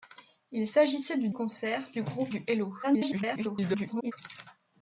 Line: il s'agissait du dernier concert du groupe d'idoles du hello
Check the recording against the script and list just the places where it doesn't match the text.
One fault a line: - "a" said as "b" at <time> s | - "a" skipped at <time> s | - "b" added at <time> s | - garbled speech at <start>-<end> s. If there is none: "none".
- "dernier" skipped at 1.3 s
- "d'idoles" skipped at 2.3 s
- garbled speech at 2.8-4.1 s